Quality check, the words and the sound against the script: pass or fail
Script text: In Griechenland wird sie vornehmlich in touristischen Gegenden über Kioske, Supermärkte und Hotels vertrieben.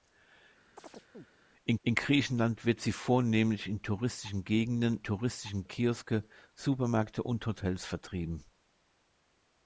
fail